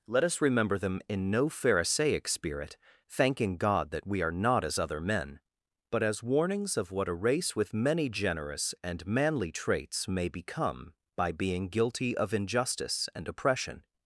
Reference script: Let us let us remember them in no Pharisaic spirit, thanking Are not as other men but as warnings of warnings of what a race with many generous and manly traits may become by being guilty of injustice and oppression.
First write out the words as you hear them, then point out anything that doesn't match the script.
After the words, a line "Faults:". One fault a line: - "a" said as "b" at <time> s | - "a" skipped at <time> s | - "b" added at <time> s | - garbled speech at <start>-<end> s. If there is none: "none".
Let us remember them in no Pharisaic spirit, thanking God that we are not as other men but as warnings of what a race with many generous and manly traits may become by being guilty of injustice and oppression.
Faults:
- "let us" skipped at 0.4 s
- "God that we" added at 3.6 s
- "warnings of" skipped at 6.9 s